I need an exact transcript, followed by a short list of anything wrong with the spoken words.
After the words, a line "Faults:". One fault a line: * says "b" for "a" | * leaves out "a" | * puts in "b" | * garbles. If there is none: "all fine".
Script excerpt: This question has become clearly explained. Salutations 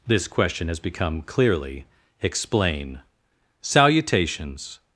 This question has become clearly explain. Salutations
Faults:
* says "explain" for "explained"